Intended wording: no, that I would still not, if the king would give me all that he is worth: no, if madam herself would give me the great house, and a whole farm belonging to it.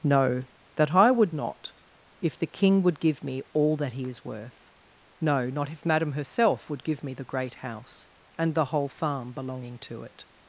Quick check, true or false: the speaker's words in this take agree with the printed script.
false